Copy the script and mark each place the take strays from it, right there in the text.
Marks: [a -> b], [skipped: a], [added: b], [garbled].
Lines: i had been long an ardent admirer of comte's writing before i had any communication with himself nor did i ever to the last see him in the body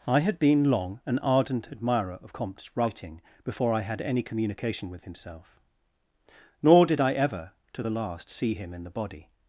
i had been long an ardent admirer of comte's writing before i had any communication with himself nor did i ever to the last see him in the body